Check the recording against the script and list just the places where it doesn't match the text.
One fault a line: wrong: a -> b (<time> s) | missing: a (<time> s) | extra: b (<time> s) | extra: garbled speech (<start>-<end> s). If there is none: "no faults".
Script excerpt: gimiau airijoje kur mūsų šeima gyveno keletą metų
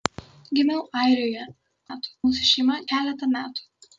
wrong: kur -> metų (1.9 s)
missing: gyveno (2.8 s)